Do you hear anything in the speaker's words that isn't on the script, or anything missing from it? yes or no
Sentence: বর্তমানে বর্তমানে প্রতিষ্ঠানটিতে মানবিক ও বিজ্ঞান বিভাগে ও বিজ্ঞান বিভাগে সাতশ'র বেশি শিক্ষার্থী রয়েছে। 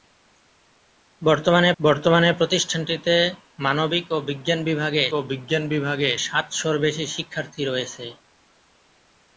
no